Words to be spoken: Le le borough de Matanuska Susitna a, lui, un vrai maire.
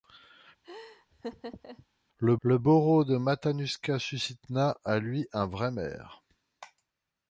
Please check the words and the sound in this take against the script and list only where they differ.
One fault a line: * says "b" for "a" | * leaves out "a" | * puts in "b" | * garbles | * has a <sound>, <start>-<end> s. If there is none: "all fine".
* has a laugh, 0.6-1.9 s